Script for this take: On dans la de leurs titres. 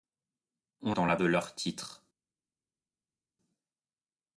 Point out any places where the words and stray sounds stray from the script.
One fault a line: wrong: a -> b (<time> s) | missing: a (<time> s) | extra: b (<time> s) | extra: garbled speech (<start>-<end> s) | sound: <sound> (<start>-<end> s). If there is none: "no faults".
no faults